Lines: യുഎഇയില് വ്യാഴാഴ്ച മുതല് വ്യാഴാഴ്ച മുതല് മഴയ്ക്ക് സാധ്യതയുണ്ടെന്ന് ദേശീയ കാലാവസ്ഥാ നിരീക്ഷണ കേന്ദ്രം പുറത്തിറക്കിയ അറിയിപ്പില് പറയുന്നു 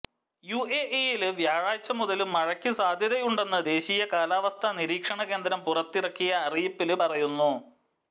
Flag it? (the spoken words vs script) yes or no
yes